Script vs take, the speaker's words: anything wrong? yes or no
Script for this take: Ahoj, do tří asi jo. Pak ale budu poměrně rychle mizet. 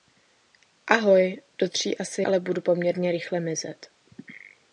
yes